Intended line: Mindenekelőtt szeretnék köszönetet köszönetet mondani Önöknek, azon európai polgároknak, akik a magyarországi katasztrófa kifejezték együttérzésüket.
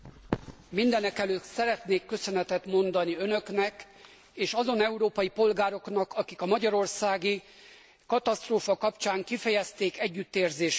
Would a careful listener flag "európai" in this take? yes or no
no